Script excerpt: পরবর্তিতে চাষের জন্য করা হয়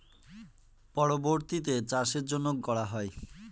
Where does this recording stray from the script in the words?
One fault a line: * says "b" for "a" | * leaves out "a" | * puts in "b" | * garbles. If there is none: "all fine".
all fine